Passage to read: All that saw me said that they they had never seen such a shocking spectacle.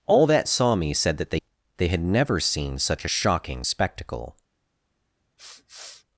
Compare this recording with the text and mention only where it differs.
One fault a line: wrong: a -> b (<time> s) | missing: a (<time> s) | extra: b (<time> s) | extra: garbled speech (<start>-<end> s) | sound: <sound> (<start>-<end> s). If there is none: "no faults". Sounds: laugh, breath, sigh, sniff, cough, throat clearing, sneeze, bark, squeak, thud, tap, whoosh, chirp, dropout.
sound: sniff (5.4-6.1 s)